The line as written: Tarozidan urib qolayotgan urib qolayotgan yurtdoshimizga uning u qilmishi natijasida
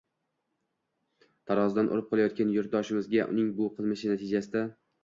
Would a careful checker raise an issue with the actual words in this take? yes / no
yes